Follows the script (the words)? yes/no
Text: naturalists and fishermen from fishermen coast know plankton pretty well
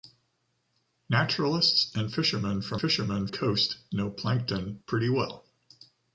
yes